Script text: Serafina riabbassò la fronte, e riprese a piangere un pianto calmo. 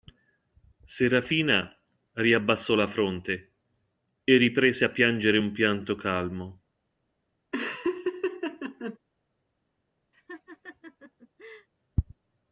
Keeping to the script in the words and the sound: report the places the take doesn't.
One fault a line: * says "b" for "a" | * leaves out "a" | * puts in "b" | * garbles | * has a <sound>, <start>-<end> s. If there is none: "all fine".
* has a laugh, 7.5-9.0 s
* has a laugh, 10.1-11.7 s